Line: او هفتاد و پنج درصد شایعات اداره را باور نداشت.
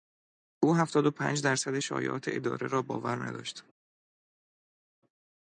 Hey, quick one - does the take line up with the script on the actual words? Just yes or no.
yes